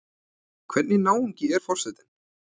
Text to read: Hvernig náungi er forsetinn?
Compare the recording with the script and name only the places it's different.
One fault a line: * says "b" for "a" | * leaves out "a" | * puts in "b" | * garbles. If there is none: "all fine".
all fine